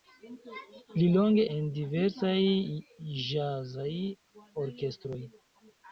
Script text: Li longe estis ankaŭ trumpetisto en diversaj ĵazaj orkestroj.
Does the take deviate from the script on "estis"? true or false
true